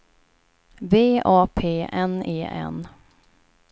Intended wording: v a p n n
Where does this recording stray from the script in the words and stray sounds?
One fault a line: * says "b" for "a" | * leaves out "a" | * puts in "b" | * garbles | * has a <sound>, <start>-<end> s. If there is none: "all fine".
* puts in "e"